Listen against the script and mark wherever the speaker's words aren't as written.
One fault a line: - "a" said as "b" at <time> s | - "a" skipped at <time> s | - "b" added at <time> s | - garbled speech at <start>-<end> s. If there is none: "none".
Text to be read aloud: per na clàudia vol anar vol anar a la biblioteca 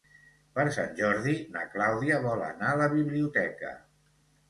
- "sant jordi" added at 0.7 s
- "vol anar" skipped at 2.7 s